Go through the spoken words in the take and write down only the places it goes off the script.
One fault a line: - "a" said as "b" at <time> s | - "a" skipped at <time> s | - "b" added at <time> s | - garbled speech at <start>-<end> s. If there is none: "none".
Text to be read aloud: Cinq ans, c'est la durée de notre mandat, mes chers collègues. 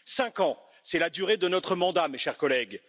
none